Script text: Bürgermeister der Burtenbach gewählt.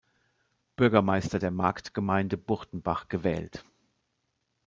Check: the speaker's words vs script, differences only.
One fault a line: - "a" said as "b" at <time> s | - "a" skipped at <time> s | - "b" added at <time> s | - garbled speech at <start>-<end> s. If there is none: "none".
- "Marktgemeinde" added at 1.5 s